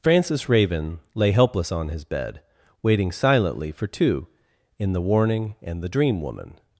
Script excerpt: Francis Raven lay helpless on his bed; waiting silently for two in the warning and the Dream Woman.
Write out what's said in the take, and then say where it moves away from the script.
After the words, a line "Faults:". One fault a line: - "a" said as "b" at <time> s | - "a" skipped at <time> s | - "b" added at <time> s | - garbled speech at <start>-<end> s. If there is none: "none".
Francis Raven lay helpless on his bed; waiting silently for two in the warning and the Dream Woman.
Faults:
none